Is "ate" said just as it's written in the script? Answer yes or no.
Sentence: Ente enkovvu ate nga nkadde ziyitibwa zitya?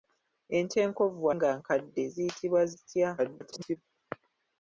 no